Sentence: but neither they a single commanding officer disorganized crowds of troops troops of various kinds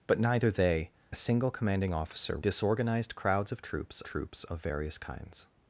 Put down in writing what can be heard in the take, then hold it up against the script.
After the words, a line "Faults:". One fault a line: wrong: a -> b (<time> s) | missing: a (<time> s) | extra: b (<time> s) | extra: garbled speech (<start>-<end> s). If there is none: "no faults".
but neither they a single commanding officer disorganized crowds of troops troops of various kinds
Faults:
no faults